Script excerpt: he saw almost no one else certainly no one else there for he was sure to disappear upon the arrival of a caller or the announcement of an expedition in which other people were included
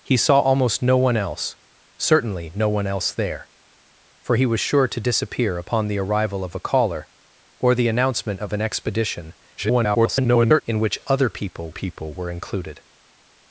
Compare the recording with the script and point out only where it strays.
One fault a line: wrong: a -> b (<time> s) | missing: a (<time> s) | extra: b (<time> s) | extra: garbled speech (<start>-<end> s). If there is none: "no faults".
extra: garbled speech (9.6-10.6 s)
extra: people (11.7 s)